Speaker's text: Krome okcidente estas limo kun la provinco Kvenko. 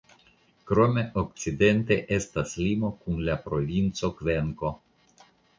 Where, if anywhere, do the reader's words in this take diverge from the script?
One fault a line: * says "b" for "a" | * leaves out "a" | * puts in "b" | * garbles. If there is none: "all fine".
all fine